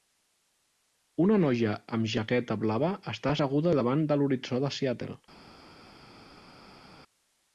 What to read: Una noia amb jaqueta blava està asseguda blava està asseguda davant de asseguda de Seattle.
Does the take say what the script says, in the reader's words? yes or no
no